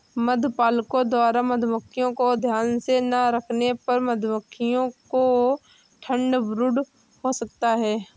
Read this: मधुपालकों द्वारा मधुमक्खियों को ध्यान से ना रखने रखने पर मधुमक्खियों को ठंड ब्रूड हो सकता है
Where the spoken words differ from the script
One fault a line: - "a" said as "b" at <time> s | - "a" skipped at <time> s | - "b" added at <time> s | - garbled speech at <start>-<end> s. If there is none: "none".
- "रखने" skipped at 3.7 s